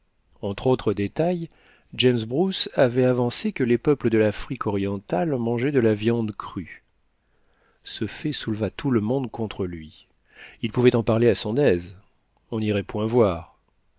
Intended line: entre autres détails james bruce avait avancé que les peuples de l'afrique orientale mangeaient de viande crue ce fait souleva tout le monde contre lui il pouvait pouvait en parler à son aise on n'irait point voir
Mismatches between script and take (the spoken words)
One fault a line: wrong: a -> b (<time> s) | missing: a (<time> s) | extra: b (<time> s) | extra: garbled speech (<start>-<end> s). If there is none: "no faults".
extra: la (5.8 s)
missing: pouvait (10.9 s)